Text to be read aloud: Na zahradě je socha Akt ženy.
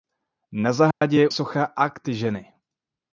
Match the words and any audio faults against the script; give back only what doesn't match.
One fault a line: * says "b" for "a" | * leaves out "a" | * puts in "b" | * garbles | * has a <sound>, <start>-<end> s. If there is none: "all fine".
* has a dropout, 0.9-1.0 s